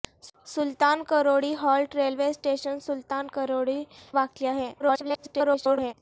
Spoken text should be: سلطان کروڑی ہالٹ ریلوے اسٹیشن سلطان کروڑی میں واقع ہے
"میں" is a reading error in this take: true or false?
true